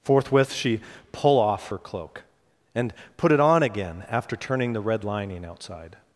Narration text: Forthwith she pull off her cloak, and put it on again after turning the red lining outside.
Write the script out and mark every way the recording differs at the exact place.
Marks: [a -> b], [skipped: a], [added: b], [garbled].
Forthwith she pull off her cloak, and put it on again after turning the red lining outside.